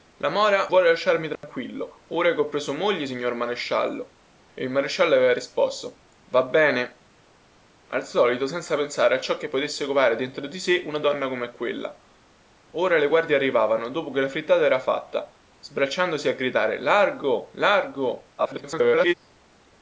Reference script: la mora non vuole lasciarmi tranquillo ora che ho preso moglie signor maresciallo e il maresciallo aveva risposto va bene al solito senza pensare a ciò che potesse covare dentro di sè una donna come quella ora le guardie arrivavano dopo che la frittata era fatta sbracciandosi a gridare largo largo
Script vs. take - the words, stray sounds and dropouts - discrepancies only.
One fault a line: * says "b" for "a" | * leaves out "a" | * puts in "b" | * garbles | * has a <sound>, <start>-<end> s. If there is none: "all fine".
* leaves out "non"
* has a dropout, 1.4-1.4 s
* garbles